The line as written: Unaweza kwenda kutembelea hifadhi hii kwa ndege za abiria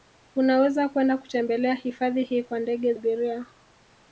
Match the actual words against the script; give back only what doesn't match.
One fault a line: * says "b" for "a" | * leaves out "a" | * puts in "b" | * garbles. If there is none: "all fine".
* leaves out "za"